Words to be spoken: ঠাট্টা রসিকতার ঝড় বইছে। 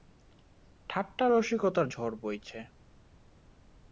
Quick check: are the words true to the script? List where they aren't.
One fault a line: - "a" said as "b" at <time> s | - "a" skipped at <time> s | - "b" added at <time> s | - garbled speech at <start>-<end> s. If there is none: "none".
none